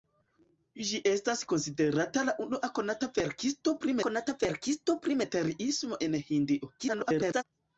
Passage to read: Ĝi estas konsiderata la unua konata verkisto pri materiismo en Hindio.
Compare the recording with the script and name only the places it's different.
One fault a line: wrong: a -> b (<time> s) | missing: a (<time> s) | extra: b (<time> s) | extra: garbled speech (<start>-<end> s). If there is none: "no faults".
extra: konata verkisto pri (4.1 s)
extra: garbled speech (6.8-7.4 s)